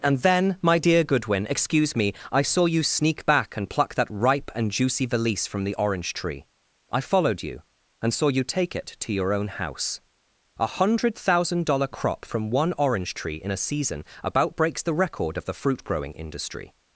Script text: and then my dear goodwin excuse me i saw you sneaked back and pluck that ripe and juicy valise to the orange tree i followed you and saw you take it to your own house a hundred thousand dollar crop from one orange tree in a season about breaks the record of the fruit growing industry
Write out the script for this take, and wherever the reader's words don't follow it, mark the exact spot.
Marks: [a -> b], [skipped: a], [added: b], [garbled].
and then my dear goodwin excuse me i saw you [sneaked -> sneak] back and pluck that ripe and juicy valise [to -> from] the orange tree i followed you and saw you take it to your own house a hundred thousand dollar crop from one orange tree in a season about breaks the record of the fruit growing industry